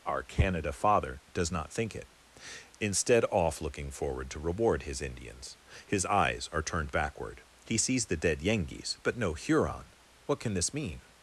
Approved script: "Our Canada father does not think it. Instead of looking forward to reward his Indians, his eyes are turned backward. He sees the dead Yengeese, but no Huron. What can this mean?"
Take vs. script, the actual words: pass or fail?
fail